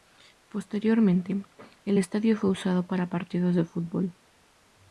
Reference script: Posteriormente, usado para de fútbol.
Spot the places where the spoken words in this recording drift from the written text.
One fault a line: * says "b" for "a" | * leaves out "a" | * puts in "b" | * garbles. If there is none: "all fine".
* puts in "el estadio fue"
* puts in "partidos"